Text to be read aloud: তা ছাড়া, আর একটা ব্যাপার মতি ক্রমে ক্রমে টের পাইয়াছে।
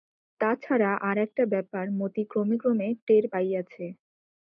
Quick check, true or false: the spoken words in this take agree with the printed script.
true